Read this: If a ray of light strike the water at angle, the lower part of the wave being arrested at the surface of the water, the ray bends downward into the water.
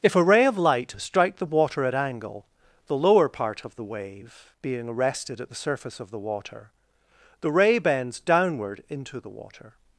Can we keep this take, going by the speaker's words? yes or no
yes